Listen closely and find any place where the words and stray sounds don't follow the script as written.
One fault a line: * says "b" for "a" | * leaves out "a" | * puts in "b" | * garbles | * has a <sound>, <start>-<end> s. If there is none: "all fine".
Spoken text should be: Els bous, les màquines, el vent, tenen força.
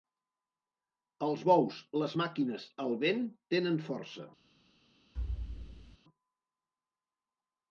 * has a thud, 5.1-6.0 s